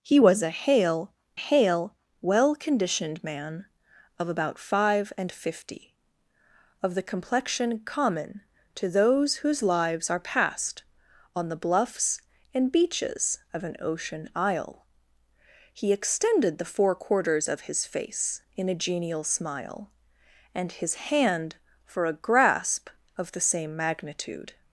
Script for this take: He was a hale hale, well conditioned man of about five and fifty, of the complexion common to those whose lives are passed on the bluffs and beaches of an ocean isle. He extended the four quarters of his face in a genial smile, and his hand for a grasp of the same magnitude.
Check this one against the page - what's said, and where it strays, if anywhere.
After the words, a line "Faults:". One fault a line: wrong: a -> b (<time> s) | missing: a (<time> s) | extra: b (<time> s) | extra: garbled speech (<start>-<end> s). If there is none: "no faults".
He was a hale hale, well conditioned man of about five and fifty, of the complexion common to those whose lives are passed on the bluffs and beaches of an ocean isle. He extended the four quarters of his face in a genial smile, and his hand for a grasp of the same magnitude.
Faults:
no faults